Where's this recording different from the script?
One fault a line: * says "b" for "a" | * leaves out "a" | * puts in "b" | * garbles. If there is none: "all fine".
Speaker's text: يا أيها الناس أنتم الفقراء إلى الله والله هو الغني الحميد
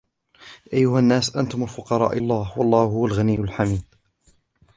* leaves out "إلى"